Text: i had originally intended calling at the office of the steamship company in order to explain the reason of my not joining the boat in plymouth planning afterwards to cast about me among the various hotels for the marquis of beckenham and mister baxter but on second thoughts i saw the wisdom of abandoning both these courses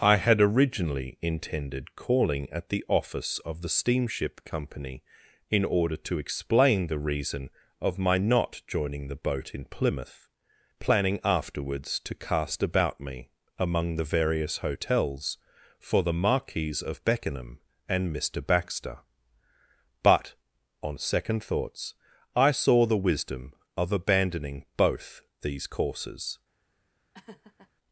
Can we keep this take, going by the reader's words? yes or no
yes